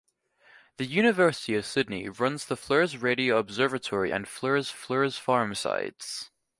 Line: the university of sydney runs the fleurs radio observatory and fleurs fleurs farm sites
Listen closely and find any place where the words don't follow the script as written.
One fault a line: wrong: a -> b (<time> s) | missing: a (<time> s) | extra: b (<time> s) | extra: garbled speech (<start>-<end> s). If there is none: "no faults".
no faults